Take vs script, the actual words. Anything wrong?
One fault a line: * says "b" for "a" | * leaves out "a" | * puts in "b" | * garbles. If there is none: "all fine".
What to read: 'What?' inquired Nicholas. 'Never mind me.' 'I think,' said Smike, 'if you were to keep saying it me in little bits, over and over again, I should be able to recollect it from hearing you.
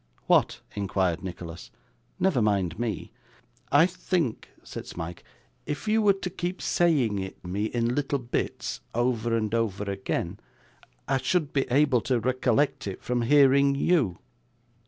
all fine